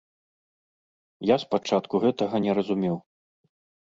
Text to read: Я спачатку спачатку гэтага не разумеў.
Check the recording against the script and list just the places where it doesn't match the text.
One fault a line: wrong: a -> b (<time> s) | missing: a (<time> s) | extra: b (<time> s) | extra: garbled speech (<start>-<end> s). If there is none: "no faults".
missing: спачатку (1.9 s)